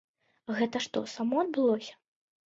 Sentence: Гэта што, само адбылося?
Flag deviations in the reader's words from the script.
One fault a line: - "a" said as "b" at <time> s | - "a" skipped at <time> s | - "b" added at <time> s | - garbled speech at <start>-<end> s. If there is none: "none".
none